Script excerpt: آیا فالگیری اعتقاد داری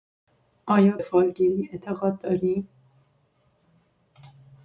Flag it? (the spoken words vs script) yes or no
no